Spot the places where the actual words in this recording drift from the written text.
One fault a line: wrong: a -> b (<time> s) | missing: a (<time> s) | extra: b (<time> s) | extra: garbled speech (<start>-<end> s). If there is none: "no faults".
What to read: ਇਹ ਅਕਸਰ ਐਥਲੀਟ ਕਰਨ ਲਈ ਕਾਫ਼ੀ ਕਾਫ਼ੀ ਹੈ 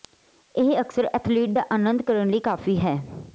extra: ਦਾ ਆਨੰਦ (1.5 s)
missing: ਕਾਫ਼ੀ (2.8 s)